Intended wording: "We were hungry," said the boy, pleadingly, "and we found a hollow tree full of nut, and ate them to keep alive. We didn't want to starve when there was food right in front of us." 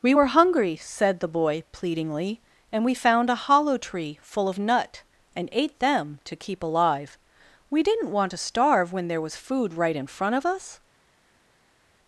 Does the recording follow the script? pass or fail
pass